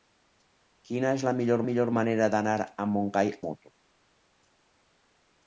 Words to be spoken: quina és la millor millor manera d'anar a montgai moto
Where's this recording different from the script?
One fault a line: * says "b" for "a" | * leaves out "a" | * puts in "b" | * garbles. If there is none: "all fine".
all fine